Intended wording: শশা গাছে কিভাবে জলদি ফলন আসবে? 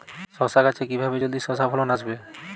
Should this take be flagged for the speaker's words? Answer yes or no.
yes